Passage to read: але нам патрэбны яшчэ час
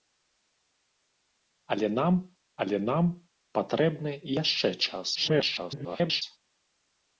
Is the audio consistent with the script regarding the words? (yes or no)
no